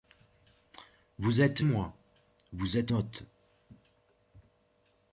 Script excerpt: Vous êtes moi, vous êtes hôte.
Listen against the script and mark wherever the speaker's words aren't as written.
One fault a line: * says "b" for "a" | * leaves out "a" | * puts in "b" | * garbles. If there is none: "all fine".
all fine